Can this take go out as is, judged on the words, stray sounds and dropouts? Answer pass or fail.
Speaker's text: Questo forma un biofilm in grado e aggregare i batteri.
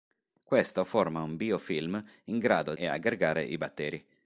pass